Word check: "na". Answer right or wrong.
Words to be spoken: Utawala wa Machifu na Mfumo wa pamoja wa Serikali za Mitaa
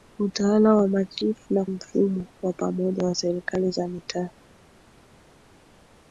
right